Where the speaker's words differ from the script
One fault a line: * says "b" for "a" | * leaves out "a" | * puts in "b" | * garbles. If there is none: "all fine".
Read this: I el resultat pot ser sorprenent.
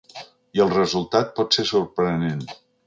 all fine